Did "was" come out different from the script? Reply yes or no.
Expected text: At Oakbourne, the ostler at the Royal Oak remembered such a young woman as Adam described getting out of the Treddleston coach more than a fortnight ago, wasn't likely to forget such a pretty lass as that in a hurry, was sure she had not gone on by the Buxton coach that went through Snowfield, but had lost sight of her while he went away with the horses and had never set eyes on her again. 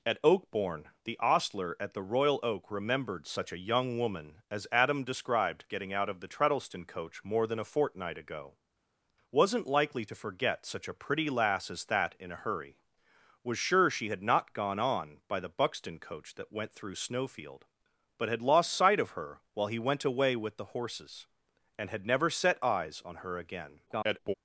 no